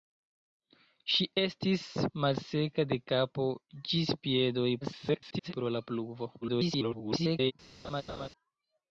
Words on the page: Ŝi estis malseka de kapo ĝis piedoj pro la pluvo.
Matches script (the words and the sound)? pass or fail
fail